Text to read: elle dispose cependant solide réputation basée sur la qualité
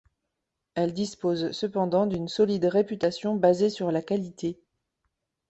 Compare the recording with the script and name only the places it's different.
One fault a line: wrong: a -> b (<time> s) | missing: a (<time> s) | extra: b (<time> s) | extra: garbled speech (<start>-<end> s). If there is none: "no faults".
extra: d'une (2.1 s)